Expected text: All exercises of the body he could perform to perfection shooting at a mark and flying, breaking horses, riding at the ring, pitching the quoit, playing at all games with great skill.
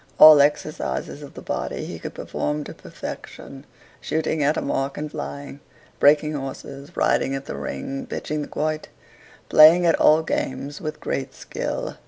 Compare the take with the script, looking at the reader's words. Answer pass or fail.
pass